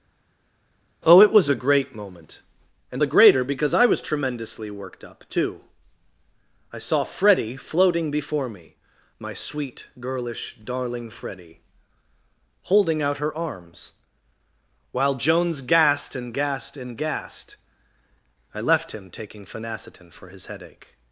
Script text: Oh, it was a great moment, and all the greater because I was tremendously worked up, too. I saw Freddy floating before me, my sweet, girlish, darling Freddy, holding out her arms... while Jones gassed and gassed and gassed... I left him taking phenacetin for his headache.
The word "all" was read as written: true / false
false